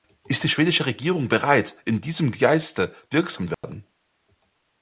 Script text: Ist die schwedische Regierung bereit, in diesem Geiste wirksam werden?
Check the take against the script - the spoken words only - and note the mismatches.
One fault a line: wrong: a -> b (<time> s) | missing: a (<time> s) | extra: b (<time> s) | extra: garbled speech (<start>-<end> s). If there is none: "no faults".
no faults